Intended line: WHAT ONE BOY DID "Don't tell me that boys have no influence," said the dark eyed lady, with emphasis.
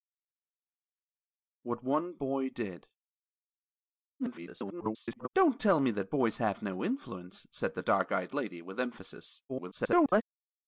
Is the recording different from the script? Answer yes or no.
yes